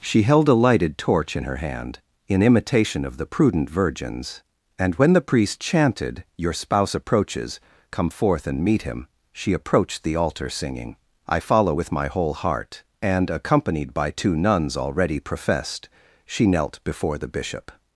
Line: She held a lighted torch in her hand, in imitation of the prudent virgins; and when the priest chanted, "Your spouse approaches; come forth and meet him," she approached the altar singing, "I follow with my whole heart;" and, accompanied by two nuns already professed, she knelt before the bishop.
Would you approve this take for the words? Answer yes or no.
yes